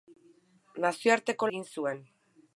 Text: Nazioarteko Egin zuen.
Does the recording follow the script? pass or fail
pass